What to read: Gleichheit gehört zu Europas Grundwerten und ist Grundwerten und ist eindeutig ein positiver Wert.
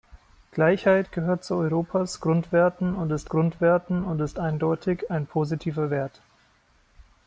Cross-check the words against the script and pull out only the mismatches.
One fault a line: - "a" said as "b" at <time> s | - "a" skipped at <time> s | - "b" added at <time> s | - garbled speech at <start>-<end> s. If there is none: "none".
none